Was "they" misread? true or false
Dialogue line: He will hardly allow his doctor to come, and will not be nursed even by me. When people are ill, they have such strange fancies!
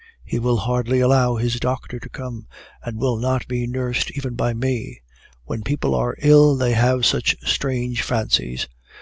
false